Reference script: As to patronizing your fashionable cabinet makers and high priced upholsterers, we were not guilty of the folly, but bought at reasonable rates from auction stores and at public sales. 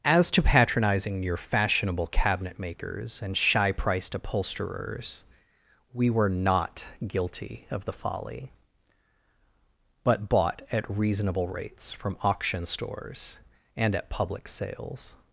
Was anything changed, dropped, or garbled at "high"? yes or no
yes